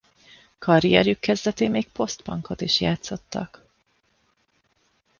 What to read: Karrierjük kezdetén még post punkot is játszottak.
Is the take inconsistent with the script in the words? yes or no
no